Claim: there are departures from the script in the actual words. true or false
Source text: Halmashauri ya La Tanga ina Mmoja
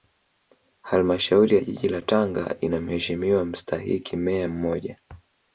true